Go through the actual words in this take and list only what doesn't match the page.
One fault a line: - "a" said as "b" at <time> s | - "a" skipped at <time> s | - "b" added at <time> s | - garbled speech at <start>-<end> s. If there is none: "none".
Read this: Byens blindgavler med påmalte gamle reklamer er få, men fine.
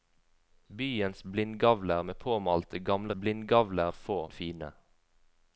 - "reklamer" said as "blindgavler" at 3.1 s
- "men" skipped at 4.2 s